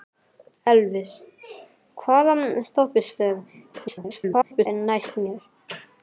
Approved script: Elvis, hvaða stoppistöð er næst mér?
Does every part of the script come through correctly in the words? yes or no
no